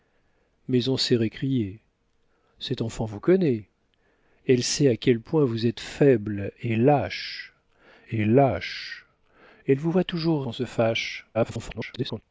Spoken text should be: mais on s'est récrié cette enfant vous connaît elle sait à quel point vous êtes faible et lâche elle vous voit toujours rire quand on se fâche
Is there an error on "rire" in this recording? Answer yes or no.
yes